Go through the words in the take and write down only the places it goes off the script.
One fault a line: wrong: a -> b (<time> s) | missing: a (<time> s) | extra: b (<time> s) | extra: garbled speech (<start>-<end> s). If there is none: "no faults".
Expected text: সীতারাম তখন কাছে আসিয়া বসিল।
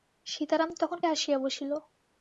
missing: কাছে (1.0 s)